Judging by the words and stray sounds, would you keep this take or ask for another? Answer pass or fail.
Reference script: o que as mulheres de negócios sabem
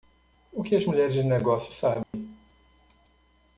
fail